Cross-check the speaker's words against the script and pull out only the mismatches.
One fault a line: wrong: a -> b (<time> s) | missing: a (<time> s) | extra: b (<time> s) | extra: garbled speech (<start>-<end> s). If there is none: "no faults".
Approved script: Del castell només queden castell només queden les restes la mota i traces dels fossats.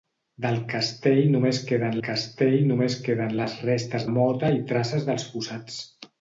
no faults